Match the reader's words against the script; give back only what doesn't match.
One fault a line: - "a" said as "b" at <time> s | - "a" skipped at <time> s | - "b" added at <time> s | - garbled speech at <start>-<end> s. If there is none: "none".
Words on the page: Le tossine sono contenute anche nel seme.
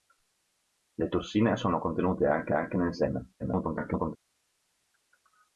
- "anche" added at 2.5 s
- garbled speech at 3.4-4.2 s